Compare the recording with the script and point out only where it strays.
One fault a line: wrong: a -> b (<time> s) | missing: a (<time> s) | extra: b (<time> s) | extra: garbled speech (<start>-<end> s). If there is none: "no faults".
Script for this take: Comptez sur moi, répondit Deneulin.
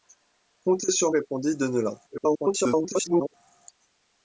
missing: moi (1.1 s)
extra: garbled speech (2.1-3.3 s)